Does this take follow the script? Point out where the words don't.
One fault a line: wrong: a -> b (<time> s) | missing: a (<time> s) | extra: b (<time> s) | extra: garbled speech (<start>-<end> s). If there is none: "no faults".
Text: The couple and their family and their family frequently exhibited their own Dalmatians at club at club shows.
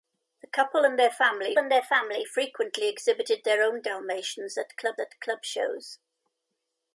no faults